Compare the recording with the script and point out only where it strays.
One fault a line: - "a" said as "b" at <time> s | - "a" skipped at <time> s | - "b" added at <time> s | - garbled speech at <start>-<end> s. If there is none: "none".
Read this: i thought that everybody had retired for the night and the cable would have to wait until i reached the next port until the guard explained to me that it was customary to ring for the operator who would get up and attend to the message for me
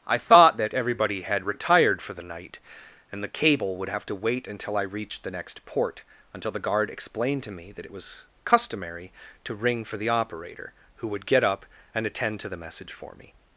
none